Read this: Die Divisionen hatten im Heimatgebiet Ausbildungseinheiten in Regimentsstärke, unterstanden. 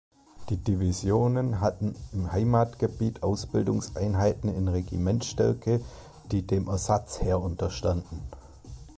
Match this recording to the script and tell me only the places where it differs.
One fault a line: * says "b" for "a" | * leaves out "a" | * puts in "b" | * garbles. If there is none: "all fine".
* puts in "die dem Ersatzheer"